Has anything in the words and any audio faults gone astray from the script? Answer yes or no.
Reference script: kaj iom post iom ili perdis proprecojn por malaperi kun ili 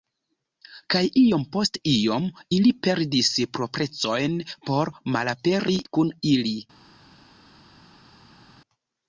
no